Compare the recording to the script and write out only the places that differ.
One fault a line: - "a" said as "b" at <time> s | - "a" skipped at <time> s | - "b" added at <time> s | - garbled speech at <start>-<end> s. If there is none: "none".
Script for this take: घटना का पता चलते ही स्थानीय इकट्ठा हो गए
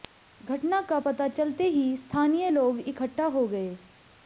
- "लोग" added at 2.5 s